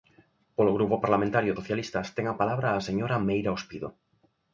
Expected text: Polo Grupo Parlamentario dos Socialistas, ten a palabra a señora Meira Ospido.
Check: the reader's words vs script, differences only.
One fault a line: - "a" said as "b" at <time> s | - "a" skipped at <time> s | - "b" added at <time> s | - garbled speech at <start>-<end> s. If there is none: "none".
- "dos" skipped at 1.5 s